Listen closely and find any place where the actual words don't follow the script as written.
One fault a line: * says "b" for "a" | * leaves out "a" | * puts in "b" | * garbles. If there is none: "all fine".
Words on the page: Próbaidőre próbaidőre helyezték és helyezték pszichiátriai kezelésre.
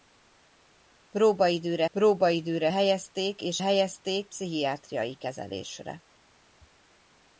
all fine